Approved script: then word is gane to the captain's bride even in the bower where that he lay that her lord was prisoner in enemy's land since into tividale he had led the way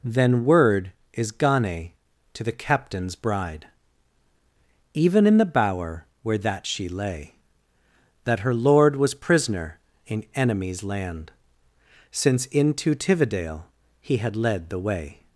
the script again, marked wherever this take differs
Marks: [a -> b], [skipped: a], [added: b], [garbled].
then word is gane to the captain's bride even in the bower where that [he -> she] lay that her lord was prisoner in enemy's land since into tividale he had led the way